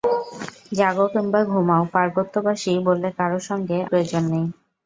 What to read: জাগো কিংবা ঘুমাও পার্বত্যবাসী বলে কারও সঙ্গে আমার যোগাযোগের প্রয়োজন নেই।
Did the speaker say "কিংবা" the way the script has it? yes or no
yes